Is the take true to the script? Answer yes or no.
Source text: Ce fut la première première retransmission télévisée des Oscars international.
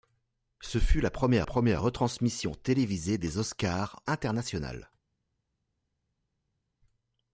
yes